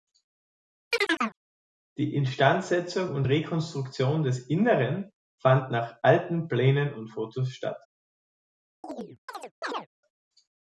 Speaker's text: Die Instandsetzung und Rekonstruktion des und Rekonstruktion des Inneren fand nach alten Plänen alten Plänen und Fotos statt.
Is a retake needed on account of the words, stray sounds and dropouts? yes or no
yes